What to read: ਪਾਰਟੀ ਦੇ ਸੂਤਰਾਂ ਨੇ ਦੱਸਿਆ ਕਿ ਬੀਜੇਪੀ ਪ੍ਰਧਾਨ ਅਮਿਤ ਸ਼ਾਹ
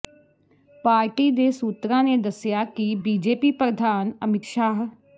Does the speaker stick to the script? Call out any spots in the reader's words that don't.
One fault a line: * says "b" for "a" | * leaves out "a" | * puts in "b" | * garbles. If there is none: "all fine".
all fine